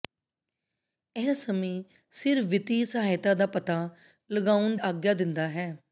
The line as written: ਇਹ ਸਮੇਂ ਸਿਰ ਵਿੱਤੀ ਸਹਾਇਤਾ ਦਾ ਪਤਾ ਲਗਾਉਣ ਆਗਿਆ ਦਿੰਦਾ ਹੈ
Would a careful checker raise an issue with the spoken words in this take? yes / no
no